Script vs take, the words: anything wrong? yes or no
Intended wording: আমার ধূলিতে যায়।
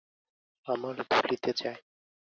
no